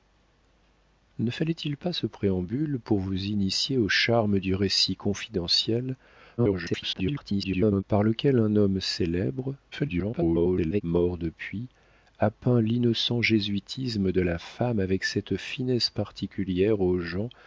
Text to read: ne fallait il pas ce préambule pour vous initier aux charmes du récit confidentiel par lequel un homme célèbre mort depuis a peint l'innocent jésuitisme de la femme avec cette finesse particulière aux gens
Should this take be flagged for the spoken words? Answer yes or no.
yes